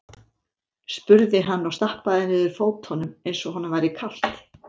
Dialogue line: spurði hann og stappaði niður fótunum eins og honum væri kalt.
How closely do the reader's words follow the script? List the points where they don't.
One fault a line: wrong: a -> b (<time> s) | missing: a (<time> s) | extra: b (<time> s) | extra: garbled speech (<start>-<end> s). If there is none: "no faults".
no faults